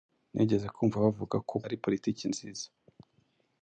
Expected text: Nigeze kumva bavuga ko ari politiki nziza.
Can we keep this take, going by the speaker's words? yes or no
yes